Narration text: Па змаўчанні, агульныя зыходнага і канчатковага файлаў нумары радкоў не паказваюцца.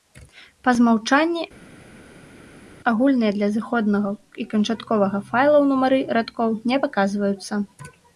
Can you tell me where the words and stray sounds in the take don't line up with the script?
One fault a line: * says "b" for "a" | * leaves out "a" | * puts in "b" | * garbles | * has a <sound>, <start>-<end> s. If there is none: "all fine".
* puts in "для"